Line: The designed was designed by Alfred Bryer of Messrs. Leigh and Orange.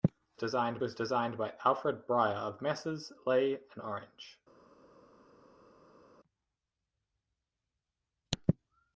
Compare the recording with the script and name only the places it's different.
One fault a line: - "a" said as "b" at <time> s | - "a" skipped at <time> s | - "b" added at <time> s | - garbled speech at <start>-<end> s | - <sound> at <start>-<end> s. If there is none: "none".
none